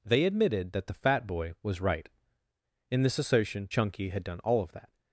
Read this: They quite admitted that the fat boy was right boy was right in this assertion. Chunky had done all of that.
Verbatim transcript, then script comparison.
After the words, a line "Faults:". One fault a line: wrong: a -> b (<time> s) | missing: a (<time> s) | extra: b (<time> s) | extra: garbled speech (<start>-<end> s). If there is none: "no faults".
They admitted that the fat boy was right in this assertion. Chunky had done all of that.
Faults:
missing: quite (0.2 s)
missing: boy was right (2.1 s)